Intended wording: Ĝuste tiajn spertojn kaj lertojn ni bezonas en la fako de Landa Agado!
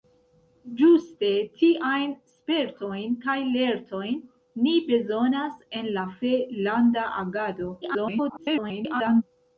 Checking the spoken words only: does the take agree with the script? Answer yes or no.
no